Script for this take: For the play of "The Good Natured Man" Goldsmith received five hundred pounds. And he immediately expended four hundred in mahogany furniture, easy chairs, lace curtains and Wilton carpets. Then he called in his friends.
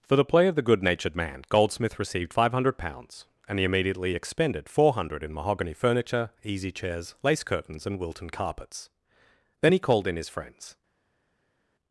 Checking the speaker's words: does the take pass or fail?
pass